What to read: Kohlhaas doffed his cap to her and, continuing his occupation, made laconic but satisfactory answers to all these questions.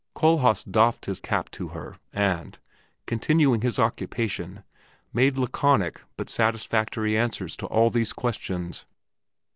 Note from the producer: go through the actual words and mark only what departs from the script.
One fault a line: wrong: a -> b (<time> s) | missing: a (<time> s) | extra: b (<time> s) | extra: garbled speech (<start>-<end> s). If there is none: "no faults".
no faults